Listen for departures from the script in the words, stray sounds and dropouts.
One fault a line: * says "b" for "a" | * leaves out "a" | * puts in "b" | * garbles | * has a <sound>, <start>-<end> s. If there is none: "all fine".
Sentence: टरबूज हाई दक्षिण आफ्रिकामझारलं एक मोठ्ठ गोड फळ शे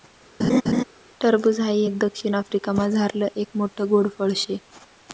* has a laugh, 0.4-0.8 s
* puts in "एक"